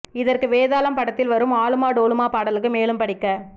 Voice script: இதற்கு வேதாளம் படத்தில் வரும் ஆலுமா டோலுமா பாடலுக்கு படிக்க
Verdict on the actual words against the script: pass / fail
fail